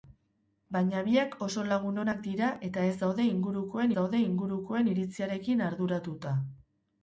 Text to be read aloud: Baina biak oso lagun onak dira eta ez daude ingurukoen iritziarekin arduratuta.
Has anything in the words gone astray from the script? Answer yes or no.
yes